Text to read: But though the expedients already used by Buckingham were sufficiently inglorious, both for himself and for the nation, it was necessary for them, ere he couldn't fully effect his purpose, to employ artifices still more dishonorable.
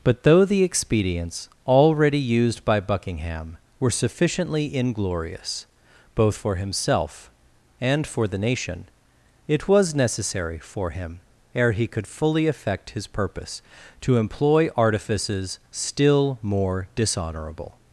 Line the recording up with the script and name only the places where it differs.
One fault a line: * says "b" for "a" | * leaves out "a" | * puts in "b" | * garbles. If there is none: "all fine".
* says "him" for "them"
* says "could" for "couldn't"